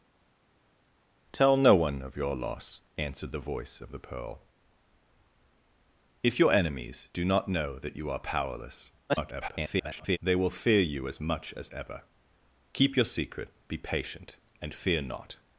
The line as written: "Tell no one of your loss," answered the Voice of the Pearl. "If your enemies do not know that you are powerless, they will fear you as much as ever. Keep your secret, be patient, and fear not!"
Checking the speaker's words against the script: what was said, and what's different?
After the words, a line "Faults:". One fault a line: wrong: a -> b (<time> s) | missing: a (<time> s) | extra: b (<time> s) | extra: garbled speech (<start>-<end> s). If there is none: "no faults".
"Tell no one of your loss," answered the Voice of the Pearl. "If your enemies do not know that you are powerless, [garbled] they will fear you as much as ever. Keep your secret, be patient, and fear not!"
Faults:
extra: garbled speech (9.1-10.2 s)